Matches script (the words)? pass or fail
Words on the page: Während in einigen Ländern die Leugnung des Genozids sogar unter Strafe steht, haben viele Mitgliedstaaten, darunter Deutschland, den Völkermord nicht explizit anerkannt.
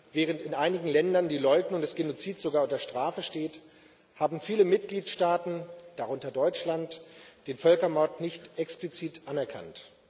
pass